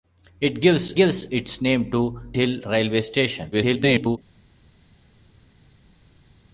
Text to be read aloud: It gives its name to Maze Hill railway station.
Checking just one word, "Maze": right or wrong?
wrong